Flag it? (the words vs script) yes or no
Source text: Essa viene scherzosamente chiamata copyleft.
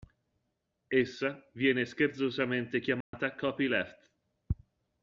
no